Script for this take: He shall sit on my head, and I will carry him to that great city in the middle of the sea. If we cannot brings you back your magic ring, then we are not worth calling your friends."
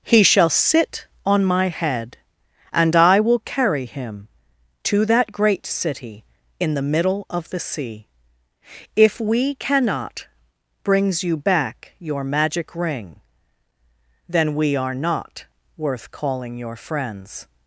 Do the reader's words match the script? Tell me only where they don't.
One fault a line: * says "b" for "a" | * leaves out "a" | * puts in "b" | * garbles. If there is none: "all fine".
all fine